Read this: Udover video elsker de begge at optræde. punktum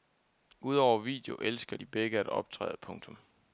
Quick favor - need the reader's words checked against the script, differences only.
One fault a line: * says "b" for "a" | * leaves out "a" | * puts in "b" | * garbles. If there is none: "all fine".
all fine